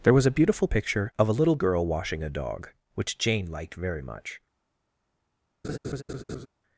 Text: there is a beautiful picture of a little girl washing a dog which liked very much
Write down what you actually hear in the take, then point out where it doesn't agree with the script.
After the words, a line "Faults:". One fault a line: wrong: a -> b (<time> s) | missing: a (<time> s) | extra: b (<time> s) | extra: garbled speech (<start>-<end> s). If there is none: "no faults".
there was a beautiful picture of a little girl washing a dog which jane liked very much
Faults:
wrong: is -> was (0.1 s)
extra: jane (3.2 s)